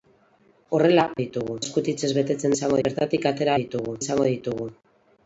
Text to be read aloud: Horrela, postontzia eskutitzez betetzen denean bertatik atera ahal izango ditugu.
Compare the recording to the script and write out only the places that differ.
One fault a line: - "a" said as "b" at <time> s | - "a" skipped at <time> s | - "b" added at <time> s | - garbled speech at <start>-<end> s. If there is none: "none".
- "postontzia" said as "ditugu" at 1.2 s
- "denean" said as "izango" at 2.5 s
- "ahal" said as "ditugu" at 3.6 s